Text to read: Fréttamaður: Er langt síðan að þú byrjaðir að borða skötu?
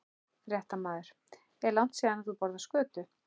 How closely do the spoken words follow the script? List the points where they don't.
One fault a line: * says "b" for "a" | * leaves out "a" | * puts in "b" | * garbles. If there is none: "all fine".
* leaves out "byrjaðir"